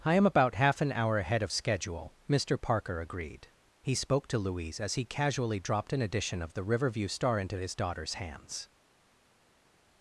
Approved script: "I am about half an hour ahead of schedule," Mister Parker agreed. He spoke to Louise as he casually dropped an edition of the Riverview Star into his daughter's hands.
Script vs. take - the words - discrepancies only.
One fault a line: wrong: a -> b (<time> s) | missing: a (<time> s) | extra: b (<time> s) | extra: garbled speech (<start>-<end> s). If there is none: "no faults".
no faults